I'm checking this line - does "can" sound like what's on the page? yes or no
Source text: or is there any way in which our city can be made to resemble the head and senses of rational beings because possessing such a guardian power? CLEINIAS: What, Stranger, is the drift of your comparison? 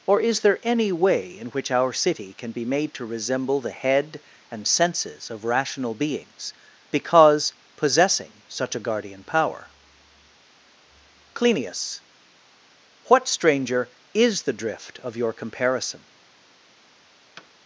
yes